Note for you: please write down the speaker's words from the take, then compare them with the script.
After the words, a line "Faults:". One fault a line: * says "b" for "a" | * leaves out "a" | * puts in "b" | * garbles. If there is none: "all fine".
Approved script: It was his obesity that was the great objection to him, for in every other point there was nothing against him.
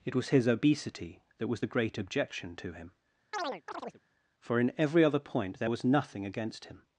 It was his obesity that was the great objection to him, for in every other point there was nothing against him.
Faults:
all fine